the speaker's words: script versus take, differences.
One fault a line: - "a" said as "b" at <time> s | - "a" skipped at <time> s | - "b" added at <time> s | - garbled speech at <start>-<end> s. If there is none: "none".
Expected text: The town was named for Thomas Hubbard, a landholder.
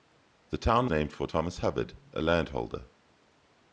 - "was" skipped at 0.9 s